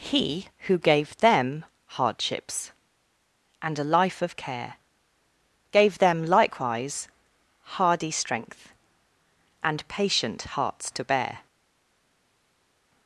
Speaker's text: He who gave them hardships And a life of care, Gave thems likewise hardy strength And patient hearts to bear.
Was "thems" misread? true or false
true